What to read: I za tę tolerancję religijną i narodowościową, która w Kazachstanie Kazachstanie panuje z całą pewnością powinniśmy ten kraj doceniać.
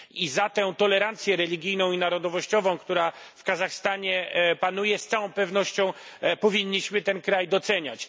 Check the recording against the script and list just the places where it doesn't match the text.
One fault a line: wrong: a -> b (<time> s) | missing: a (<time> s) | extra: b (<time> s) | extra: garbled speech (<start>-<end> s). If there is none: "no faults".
missing: Kazachstanie (4.3 s)